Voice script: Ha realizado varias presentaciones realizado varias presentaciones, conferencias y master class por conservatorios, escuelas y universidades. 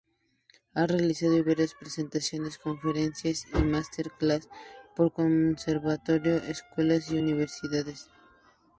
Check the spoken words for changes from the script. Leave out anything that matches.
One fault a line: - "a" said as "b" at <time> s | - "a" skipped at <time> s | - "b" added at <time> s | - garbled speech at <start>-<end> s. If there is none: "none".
- "realizado varias presentaciones" skipped at 2.6 s